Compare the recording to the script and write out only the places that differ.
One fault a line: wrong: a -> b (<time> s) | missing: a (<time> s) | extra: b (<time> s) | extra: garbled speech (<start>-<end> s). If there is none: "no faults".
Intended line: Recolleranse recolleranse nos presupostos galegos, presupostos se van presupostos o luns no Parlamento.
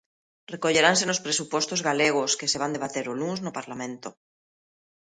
missing: recolleranse (1.0 s)
wrong: presupostos -> que (2.4 s)
wrong: presupostos -> debater (2.7 s)